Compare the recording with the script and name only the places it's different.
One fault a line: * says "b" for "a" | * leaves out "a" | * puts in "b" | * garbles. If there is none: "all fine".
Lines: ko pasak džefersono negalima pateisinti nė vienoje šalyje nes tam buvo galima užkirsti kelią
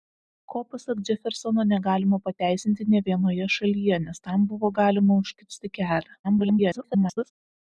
* garbles